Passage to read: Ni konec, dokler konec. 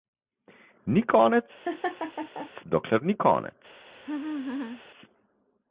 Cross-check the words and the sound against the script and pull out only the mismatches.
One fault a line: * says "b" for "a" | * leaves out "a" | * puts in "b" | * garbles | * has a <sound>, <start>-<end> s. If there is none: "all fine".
* has a laugh, 1.6-2.5 s
* puts in "ni"
* has a laugh, 3.9-4.8 s